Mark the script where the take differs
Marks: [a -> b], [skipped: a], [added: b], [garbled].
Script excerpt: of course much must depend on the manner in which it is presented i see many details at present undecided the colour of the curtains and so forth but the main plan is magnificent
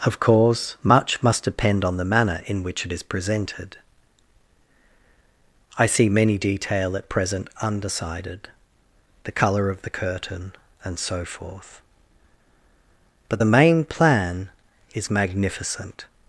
of course much must depend on the manner in which it is presented i see many [details -> detail] at present undecided the colour of the [curtains -> curtain] and so forth but the main plan is magnificent